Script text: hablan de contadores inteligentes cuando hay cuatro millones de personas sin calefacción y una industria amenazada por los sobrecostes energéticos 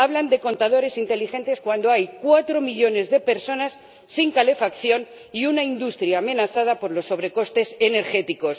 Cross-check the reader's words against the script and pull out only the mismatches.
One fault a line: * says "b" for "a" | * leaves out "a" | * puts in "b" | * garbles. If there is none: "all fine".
all fine